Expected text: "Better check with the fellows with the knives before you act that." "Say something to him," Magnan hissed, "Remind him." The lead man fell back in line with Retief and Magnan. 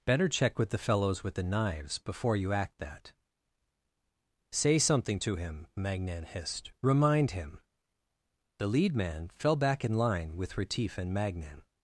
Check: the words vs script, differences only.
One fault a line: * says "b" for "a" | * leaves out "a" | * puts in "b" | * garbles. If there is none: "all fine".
all fine